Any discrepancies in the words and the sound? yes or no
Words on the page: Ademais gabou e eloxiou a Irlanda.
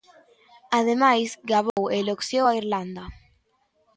yes